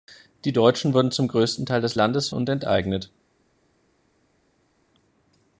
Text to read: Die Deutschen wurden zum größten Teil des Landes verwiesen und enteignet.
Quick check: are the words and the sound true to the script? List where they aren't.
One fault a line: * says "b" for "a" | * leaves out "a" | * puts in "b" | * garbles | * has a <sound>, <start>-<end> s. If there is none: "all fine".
* leaves out "verwiesen"